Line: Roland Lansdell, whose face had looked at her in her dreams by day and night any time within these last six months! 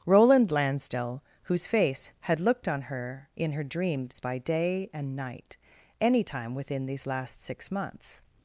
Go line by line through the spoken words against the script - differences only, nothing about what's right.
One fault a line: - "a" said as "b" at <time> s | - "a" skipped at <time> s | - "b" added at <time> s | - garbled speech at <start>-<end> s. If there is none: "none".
- "at" said as "on" at 2.7 s